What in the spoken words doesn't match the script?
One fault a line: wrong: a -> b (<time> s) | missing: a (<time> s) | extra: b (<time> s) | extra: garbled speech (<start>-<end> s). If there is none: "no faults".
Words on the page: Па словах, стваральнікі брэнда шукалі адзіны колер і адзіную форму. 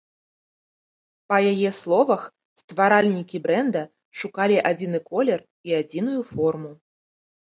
extra: яе (1.5 s)